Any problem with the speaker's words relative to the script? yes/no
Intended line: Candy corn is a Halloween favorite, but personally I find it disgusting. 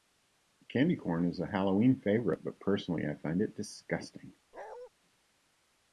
no